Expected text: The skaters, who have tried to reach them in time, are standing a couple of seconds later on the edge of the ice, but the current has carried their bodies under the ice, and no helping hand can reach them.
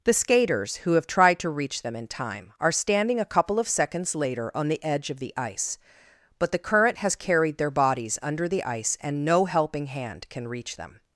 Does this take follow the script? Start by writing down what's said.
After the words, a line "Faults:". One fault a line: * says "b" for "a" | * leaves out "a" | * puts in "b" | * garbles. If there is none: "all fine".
The skaters, who have tried to reach them in time, are standing a couple of seconds later on the edge of the ice, but the current has carried their bodies under the ice, and no helping hand can reach them.
Faults:
all fine